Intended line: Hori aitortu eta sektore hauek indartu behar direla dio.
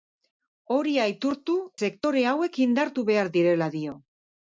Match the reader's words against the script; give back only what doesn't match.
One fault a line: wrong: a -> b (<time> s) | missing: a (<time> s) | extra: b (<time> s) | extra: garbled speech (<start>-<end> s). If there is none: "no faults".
missing: eta (1.6 s)